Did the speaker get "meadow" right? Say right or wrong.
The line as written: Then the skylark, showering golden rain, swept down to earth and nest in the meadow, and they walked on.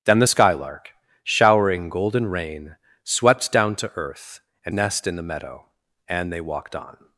right